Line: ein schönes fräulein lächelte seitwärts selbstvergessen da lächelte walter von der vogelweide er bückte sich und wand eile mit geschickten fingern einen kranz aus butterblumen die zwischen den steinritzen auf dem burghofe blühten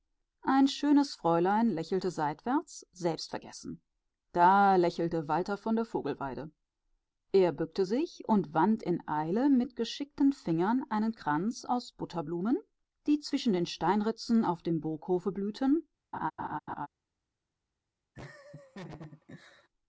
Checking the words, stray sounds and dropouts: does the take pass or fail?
fail